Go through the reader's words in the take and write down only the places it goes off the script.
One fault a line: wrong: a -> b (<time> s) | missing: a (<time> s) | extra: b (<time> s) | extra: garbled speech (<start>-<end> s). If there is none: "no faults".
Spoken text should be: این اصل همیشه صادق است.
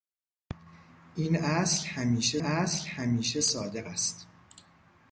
extra: اصل همیشه (2.4 s)